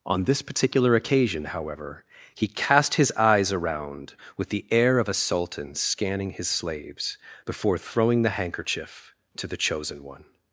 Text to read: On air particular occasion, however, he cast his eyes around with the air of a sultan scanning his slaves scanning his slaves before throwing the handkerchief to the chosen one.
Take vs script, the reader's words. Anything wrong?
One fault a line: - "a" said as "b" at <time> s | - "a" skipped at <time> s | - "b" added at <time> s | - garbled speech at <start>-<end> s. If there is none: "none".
- "air" said as "this" at 0.2 s
- "scanning his slaves" skipped at 7.2 s